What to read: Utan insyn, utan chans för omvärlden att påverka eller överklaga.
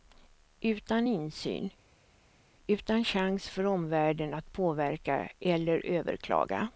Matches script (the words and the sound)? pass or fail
pass